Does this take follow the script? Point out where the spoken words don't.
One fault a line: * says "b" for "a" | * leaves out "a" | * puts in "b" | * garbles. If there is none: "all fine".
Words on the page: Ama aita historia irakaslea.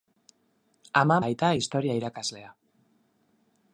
all fine